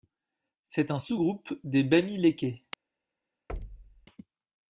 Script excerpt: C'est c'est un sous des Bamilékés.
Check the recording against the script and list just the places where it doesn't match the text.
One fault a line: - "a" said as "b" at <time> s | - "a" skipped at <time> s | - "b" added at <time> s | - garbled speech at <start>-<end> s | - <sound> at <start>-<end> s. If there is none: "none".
- "c'est" skipped at 0.9 s
- "groupe" added at 1.2 s
- thud at 3.5-4.1 s